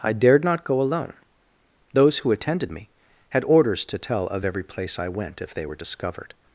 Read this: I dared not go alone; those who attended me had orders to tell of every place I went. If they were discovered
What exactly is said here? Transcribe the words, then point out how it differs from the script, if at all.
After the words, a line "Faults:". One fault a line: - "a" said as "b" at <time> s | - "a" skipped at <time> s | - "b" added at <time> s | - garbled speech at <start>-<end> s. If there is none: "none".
I dared not go alone; those who attended me had orders to tell of every place I went. If they were discovered
Faults:
none